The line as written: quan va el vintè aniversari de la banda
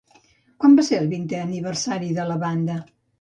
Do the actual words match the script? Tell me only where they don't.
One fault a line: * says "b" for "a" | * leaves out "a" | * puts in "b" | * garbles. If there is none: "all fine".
* puts in "ser"